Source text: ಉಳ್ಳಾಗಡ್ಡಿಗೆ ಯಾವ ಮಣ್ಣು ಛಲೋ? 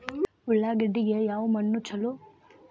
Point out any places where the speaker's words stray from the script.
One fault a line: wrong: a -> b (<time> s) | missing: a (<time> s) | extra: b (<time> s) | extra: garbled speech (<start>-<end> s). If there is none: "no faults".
no faults